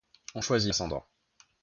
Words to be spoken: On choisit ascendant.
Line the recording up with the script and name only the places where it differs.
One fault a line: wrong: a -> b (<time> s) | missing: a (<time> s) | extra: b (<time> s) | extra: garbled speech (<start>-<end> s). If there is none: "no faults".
no faults